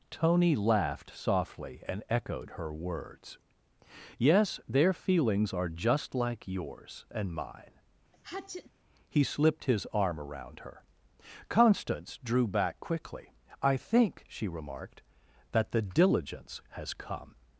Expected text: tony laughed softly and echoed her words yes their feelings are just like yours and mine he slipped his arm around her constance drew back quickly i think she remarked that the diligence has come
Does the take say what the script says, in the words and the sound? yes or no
no